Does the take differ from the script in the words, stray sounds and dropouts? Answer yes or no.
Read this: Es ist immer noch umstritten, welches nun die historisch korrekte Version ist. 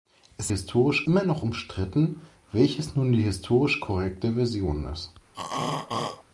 yes